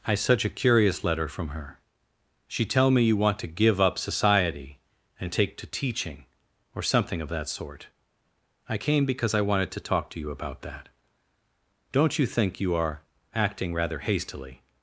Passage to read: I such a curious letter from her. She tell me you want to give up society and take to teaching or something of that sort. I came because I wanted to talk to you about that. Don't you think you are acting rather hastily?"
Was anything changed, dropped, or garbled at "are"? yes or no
no